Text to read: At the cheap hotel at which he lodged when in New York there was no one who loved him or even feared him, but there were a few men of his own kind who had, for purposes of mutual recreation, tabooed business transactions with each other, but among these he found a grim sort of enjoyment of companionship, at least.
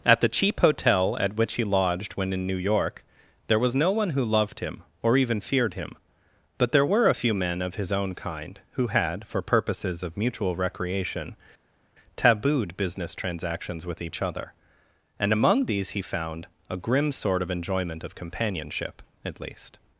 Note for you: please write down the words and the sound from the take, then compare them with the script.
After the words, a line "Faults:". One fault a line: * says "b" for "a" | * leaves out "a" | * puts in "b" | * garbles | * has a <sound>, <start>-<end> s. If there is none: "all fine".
At the cheap hotel at which he lodged when in New York there was no one who loved him or even feared him, but there were a few men of his own kind who had, for purposes of mutual recreation, tabooed business transactions with each other, and among these he found a grim sort of enjoyment of companionship, at least.
Faults:
* says "and" for "but"